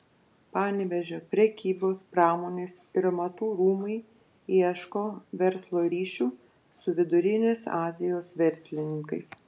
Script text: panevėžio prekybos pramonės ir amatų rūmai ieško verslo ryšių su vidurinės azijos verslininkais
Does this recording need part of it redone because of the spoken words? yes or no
no